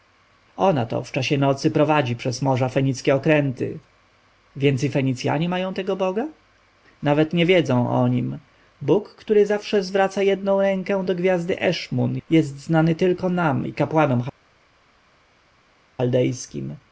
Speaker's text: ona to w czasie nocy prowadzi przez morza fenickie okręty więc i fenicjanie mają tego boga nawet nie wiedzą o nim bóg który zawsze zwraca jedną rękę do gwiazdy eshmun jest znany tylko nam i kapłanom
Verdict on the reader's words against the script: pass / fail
pass